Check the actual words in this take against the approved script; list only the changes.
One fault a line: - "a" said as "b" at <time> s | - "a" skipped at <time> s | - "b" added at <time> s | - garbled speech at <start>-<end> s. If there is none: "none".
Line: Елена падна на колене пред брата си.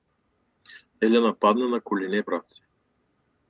- "пред" skipped at 2.2 s